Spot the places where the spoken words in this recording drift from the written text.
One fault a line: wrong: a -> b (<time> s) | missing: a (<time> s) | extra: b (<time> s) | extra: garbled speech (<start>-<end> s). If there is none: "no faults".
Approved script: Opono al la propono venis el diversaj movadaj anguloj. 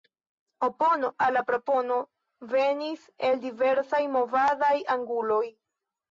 no faults